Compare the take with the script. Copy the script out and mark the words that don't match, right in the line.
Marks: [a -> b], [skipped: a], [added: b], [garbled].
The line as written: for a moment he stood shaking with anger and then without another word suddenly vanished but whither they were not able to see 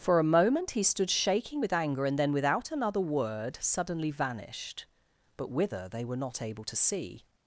for a moment he stood shaking with anger and then without another word suddenly vanished but whither they were not able to see